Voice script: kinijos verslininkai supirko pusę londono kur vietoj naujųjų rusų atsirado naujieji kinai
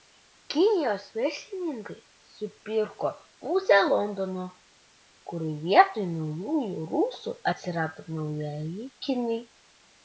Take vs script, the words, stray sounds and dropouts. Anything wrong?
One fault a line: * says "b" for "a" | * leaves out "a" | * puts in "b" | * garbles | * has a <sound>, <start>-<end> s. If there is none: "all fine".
all fine